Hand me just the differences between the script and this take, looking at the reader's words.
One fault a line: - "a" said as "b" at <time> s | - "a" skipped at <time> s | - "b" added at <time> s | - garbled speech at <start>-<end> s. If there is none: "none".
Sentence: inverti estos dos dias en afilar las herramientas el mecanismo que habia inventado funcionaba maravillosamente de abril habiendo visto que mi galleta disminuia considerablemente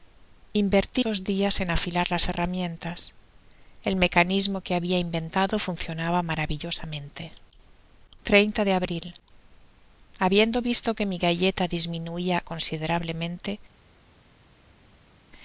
- "estos" skipped at 1.0 s